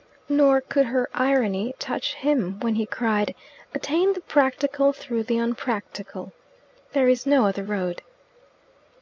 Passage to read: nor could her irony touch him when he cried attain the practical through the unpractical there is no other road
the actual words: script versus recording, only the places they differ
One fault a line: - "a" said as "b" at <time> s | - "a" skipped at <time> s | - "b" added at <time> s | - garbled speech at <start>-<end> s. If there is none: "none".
none